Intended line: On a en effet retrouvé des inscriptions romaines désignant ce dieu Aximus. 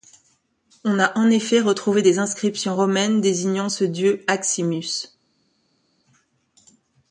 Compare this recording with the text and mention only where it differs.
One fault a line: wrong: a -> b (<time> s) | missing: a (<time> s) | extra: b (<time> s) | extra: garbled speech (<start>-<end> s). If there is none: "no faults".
no faults